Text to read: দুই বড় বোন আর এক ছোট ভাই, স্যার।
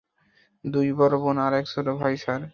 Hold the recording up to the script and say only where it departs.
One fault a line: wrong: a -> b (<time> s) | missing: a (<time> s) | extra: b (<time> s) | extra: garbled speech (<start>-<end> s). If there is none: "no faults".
no faults